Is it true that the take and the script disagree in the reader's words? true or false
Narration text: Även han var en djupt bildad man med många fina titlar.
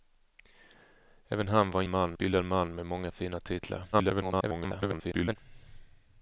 true